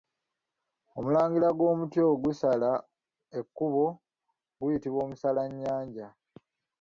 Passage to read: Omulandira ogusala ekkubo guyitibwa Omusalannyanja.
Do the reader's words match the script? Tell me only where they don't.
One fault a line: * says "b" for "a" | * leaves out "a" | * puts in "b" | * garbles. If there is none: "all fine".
* puts in "gw'omuti"